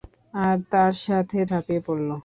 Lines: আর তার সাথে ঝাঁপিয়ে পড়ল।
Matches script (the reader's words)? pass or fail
pass